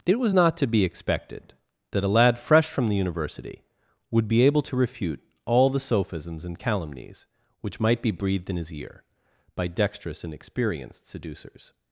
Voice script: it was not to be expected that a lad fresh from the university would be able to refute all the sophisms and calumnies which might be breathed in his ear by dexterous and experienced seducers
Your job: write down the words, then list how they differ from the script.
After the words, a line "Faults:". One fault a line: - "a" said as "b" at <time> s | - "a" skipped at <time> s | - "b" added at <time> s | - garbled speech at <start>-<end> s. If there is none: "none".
it was not to be expected that a lad fresh from the university would be able to refute all the sophisms and calumnies which might be breathed in his ear by dexterous and experienced seducers
Faults:
none